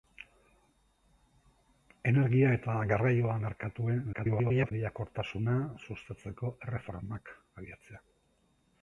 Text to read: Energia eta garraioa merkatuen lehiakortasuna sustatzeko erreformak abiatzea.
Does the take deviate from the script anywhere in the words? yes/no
yes